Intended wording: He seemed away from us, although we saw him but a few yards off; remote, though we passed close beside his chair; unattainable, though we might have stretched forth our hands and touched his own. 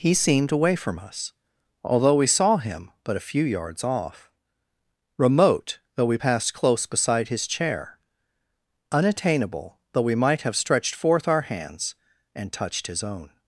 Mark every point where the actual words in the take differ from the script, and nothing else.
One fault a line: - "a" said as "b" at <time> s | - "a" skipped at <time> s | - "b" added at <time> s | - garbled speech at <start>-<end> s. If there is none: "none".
none